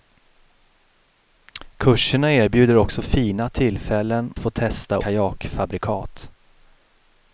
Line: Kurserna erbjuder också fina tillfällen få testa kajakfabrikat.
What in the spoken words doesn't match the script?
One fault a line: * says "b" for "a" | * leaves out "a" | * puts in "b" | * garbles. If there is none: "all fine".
all fine